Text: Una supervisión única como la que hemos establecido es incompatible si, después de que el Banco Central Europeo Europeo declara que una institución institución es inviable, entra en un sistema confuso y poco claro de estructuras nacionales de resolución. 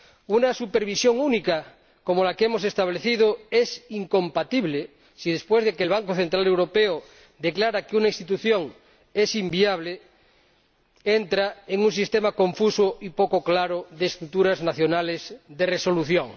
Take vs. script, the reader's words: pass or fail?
fail